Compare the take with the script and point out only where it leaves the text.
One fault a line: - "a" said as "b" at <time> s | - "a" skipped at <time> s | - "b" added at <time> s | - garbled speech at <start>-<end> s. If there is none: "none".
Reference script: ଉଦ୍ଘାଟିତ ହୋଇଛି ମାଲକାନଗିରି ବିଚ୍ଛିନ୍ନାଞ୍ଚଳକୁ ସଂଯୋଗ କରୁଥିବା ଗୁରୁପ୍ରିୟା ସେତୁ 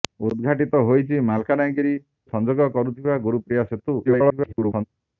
- "ବିଚ୍ଛିନ୍ନାଞ୍ଚଳକୁ" skipped at 1.9 s
- garbled speech at 4.1-4.8 s